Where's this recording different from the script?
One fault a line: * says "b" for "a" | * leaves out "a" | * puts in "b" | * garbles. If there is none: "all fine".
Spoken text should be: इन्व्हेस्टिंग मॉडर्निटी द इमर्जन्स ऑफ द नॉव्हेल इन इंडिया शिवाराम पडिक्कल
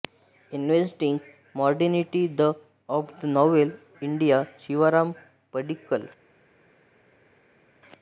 * leaves out "इमर्जन्स"
* leaves out "इन"